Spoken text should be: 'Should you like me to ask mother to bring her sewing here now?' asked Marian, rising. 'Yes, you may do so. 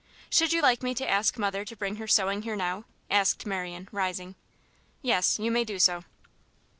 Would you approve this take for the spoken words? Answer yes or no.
yes